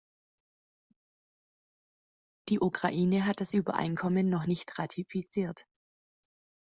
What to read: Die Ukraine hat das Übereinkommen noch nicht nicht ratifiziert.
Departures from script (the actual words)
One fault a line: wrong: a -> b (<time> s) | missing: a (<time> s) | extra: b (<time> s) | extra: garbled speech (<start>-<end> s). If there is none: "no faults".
missing: nicht (4.8 s)